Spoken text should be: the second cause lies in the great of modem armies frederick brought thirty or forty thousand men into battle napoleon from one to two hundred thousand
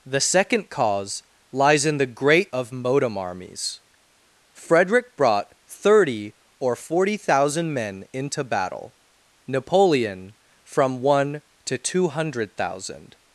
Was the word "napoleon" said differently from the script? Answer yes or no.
no